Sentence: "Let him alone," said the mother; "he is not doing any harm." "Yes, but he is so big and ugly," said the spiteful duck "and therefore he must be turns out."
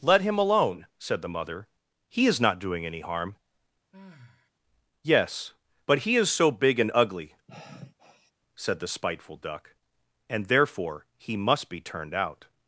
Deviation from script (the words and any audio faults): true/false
true